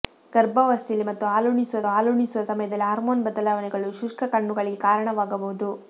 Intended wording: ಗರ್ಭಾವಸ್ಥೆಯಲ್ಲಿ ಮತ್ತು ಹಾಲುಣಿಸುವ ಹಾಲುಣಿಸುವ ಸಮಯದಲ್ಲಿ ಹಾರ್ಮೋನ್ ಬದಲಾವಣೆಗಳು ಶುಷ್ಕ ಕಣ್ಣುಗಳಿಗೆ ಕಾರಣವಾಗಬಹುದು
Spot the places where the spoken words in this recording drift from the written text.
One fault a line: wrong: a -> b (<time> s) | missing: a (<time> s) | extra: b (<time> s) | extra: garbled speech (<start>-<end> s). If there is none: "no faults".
no faults